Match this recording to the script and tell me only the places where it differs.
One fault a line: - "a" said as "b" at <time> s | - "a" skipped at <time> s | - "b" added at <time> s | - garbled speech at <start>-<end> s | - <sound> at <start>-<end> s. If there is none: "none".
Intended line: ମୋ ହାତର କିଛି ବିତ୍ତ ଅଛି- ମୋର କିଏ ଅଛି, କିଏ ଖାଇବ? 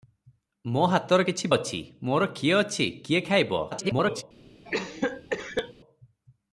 - "ବିତ୍ତ" skipped at 1.5 s
- garbled speech at 3.7-4.2 s
- cough at 4.6-5.7 s